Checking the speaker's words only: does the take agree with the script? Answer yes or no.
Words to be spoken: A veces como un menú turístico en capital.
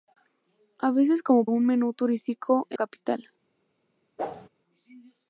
yes